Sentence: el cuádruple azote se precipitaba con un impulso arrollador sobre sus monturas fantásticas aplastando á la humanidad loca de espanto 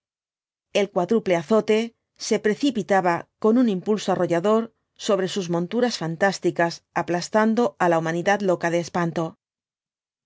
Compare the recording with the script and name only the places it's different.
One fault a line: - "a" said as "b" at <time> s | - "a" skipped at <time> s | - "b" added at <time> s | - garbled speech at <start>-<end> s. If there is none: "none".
none